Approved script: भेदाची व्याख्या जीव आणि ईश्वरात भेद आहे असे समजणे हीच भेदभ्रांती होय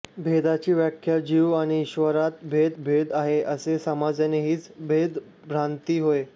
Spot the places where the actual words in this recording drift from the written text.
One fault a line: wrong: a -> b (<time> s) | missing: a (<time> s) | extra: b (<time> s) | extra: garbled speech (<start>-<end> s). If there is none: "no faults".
extra: भेद (2.8 s)